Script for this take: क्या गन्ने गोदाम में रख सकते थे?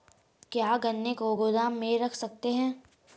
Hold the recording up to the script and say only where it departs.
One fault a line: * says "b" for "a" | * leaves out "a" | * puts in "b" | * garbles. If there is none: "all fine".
* puts in "को"
* says "हैं" for "थे"